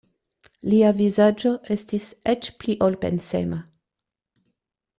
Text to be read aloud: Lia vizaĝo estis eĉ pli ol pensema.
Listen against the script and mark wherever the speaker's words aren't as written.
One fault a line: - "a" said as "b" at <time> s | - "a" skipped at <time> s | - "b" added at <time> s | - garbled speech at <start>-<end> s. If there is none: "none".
none